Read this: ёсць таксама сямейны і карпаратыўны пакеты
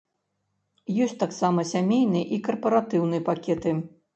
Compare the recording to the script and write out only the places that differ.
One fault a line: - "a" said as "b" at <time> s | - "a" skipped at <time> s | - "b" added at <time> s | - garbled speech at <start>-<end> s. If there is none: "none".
none